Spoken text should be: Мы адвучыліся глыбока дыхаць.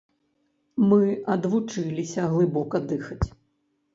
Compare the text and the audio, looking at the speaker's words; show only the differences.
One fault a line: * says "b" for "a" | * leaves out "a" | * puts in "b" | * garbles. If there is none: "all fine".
all fine